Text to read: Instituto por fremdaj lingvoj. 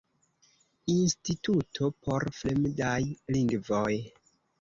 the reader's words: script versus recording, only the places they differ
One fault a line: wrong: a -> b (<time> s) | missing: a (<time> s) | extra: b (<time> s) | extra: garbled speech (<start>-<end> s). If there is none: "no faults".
no faults